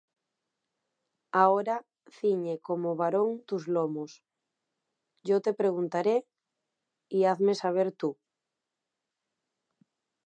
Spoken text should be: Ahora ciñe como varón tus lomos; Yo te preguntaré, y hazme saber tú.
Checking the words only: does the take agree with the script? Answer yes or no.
yes